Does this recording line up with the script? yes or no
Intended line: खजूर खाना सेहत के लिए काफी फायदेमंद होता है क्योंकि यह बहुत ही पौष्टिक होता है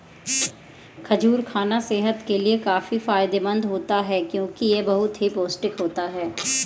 yes